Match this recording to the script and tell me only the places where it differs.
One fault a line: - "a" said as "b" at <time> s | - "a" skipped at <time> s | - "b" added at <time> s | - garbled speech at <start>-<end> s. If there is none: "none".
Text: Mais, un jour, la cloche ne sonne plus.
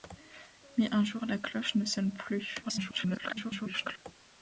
- garbled speech at 2.6-4.0 s